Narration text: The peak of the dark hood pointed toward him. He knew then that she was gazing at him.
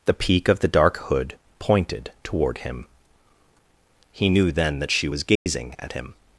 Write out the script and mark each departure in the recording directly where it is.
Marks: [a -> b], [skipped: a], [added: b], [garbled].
The peak of the dark hood pointed toward him. He knew then that she was gazing at him.